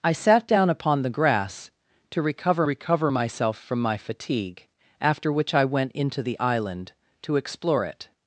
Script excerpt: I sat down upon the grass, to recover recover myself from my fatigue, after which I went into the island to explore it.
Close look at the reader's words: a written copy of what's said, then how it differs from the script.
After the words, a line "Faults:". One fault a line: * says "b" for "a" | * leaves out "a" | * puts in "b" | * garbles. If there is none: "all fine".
I sat down upon the grass, to recover recover myself from my fatigue, after which I went into the island to explore it.
Faults:
all fine